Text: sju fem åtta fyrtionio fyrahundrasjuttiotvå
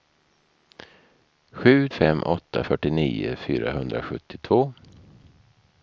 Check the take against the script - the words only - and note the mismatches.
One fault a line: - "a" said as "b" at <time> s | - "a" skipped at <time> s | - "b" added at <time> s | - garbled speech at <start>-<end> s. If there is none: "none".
none